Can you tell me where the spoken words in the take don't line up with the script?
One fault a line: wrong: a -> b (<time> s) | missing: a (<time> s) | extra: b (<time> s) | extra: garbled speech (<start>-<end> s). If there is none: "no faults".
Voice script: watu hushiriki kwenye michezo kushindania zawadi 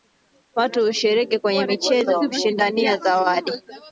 no faults